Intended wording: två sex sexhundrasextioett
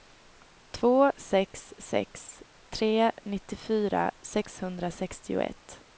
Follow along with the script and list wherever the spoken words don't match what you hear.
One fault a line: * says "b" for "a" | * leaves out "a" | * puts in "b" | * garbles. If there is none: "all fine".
* puts in "sex tre nittiofyra"